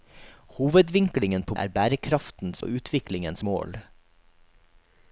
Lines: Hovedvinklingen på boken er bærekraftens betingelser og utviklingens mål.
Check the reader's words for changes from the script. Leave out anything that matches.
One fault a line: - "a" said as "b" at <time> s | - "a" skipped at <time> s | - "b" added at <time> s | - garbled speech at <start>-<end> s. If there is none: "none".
- "boken" skipped at 1.6 s
- "betingelser" skipped at 2.6 s